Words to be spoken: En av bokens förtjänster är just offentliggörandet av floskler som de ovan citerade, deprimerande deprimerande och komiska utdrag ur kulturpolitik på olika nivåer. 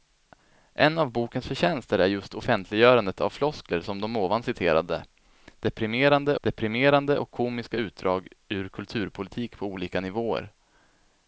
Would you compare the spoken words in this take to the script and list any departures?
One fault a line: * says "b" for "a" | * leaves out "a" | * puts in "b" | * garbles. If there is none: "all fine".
all fine